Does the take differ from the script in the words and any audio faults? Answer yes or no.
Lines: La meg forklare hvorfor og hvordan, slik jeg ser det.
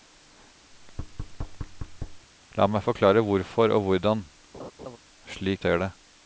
yes